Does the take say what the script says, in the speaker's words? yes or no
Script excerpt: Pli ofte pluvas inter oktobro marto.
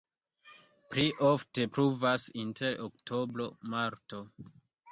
yes